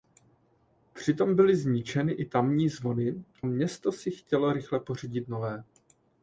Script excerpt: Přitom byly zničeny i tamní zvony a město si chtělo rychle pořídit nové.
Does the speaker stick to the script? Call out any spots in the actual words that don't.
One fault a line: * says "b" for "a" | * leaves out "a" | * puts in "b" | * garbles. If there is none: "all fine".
* leaves out "a"